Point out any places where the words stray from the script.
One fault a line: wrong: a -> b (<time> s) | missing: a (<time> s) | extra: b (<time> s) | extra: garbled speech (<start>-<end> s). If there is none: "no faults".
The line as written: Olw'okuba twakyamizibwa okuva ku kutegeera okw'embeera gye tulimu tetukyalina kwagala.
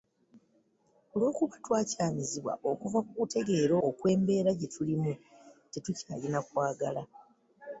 no faults